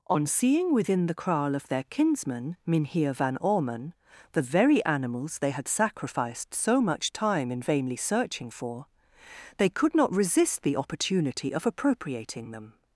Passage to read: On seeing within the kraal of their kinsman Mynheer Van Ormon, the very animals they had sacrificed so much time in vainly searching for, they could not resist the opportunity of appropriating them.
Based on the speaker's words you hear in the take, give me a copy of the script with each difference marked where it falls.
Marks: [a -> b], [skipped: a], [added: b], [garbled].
On seeing within the kraal of their kinsman Mynheer Van Ormon, the very animals they had sacrificed so much time in vainly searching for, they could not resist the opportunity of appropriating them.